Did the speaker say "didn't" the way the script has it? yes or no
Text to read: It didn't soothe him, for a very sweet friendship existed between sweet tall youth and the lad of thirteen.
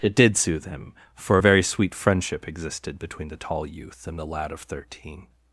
no